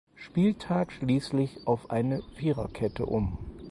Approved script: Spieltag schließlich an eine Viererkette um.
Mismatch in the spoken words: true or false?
true